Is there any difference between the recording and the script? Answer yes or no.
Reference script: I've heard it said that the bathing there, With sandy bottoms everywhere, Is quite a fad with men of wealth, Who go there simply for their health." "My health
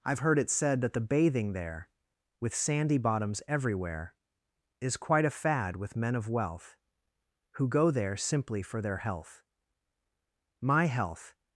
no